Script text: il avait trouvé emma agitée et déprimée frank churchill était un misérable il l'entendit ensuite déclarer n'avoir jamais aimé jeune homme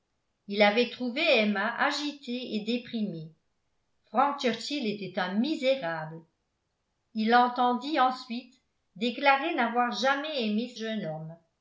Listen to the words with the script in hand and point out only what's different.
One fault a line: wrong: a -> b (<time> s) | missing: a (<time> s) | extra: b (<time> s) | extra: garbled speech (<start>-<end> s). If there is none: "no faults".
no faults